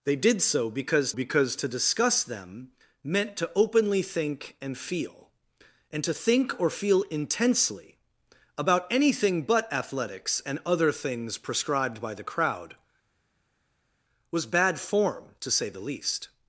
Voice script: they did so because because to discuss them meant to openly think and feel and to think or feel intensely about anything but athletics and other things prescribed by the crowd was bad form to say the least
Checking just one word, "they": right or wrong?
right